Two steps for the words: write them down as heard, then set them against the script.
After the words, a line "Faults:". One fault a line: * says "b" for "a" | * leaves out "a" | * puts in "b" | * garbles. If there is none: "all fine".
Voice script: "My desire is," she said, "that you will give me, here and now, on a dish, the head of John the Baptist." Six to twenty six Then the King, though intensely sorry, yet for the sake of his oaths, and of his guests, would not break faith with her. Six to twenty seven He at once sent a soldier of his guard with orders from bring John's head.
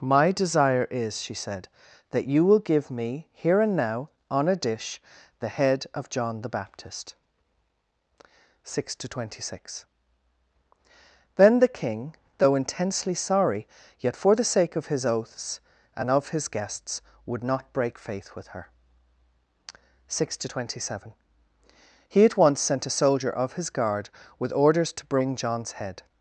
"My desire is," she said, "that you will give me, here and now, on a dish, the head of John the Baptist." Six to twenty six Then the King, though intensely sorry, yet for the sake of his oaths, and of his guests, would not break faith with her. Six to twenty seven He at once sent a soldier of his guard with orders to bring John's head.
Faults:
* says "to" for "from"